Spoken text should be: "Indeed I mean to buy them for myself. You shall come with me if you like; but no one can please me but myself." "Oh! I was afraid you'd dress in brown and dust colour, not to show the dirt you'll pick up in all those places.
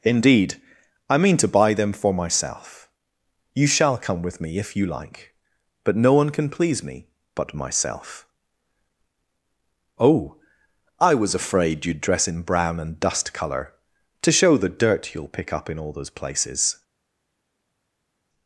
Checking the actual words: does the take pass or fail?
fail